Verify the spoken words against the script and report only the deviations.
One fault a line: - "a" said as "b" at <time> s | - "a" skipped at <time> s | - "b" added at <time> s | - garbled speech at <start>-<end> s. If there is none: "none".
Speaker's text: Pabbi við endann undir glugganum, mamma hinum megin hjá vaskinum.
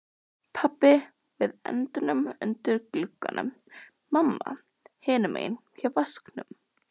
none